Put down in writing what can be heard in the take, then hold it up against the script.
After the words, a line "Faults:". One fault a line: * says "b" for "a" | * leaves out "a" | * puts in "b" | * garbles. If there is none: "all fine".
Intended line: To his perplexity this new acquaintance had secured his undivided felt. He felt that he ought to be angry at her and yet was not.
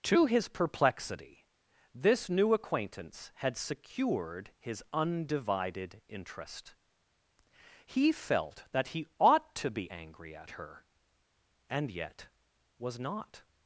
To his perplexity this new acquaintance had secured his undivided interest. He felt that he ought to be angry at her and yet was not.
Faults:
* says "interest" for "felt"